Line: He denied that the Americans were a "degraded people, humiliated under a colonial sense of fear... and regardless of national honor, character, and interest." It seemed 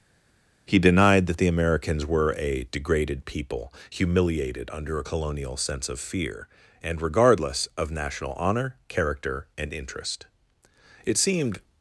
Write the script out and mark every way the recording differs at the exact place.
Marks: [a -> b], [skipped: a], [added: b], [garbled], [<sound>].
He denied that the Americans were a "degraded people, humiliated under a colonial sense of fear... and regardless of national honor, character, and interest." It seemed